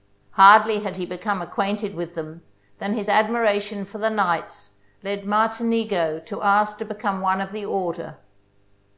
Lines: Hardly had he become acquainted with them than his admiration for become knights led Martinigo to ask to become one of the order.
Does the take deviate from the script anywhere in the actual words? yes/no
yes